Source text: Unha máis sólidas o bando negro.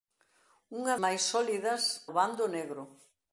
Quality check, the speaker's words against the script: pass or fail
pass